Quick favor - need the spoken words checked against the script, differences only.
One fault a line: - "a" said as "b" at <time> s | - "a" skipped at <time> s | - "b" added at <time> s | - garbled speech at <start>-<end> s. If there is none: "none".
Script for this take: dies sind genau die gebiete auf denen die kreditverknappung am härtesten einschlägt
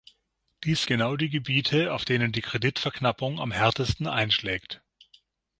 - "sind" skipped at 0.8 s